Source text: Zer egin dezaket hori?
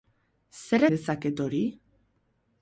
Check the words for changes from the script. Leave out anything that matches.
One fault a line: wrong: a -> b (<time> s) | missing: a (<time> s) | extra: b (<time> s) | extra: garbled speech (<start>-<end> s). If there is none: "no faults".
missing: egin (0.8 s)